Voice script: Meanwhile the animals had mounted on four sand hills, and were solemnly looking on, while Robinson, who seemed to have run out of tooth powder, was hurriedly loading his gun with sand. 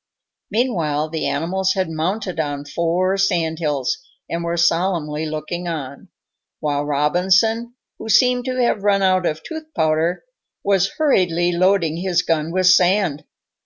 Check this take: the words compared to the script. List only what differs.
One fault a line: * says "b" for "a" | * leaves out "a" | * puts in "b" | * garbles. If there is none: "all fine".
all fine